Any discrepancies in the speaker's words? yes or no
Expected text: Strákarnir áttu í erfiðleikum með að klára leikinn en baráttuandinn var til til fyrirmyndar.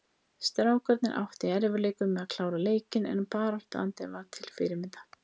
yes